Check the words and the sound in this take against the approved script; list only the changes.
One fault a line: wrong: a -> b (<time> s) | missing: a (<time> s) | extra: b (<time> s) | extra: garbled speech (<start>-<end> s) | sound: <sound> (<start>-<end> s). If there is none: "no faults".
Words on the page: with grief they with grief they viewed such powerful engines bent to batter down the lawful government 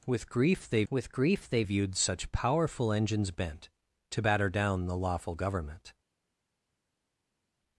no faults